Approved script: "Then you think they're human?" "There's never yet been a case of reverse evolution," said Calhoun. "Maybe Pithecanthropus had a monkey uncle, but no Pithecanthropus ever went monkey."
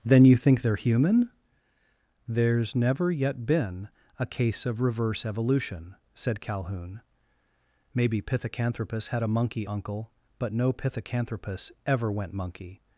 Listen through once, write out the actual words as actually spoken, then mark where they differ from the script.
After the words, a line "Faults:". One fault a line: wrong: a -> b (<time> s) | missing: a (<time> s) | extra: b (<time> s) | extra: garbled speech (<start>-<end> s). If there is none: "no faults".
"Then you think they're human?" "There's never yet been a case of reverse evolution," said Calhoun. "Maybe Pithecanthropus had a monkey uncle, but no Pithecanthropus ever went monkey."
Faults:
no faults